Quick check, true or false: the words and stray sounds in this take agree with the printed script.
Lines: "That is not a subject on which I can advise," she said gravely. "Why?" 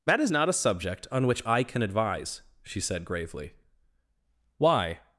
true